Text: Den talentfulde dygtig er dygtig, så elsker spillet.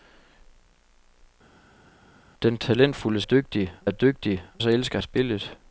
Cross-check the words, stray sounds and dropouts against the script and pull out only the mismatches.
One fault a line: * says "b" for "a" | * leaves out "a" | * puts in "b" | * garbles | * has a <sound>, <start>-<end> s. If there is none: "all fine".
all fine